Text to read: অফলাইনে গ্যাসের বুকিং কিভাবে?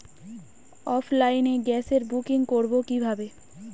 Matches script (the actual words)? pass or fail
fail